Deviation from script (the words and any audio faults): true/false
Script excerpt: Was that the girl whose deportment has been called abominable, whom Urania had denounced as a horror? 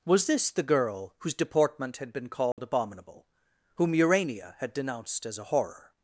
true